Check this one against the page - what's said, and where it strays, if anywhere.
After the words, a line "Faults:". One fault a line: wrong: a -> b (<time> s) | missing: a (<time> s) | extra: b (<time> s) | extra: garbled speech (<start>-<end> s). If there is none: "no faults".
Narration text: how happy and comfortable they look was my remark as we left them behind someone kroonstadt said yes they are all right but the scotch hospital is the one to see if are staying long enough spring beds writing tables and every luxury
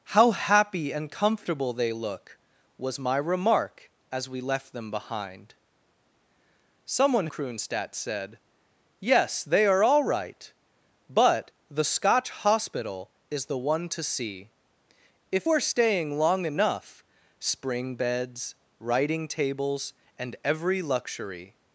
how happy and comfortable they look was my remark as we left them behind someone kroonstadt said yes they are all right but the scotch hospital is the one to see if are staying long enough spring beds writing tables and every luxury
Faults:
no faults